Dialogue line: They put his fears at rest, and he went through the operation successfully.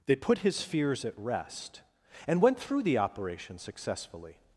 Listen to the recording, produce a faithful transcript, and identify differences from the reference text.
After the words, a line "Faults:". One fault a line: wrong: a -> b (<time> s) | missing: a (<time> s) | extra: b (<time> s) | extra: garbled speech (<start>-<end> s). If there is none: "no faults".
They put his fears at rest, and went through the operation successfully.
Faults:
missing: he (2.4 s)